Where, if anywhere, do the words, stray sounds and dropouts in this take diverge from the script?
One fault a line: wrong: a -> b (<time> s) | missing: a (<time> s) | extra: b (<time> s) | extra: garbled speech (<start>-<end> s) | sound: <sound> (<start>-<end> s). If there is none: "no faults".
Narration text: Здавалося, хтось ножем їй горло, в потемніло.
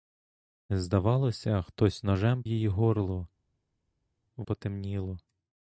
no faults